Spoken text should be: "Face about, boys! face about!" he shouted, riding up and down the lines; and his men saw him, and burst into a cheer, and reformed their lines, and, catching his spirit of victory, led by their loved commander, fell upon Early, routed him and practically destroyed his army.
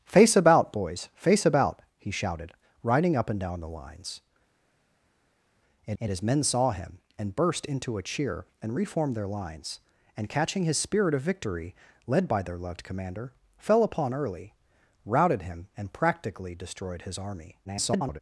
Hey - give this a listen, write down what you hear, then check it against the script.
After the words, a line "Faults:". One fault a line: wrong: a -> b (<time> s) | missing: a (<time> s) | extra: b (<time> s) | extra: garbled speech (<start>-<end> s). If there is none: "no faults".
"Face about, boys! face about!" he shouted, riding up and down the lines; and and his men saw him, and burst into a cheer, and reformed their lines, and, catching his spirit of victory, led by their loved commander, fell upon Early, routed him and practically destroyed his army. [garbled]
Faults:
extra: and (6.0 s)
extra: garbled speech (17.6-18.2 s)